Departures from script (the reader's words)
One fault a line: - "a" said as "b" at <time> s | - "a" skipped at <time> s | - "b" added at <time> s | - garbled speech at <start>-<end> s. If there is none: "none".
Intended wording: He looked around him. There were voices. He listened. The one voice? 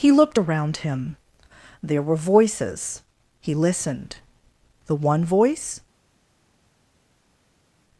none